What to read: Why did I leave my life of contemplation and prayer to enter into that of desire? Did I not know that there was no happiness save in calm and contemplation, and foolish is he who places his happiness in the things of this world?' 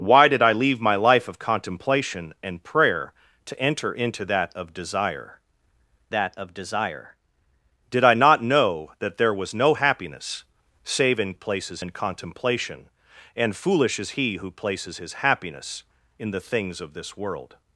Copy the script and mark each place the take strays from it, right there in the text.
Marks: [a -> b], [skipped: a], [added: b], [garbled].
Why did I leave my life of contemplation and prayer to enter into that of desire? [added: that of desire] Did I not know that there was no happiness save in [calm -> places] and contemplation, and foolish is he who places his happiness in the things of this world?'